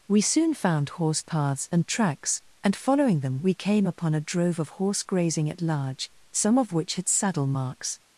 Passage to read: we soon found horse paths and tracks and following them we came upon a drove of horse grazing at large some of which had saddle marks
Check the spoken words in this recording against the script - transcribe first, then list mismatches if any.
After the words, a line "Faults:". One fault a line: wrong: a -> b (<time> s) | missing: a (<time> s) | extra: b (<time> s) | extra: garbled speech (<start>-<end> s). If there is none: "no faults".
we soon found horse paths and tracks and following them we came upon a drove of horse grazing at large some of which had saddle marks
Faults:
no faults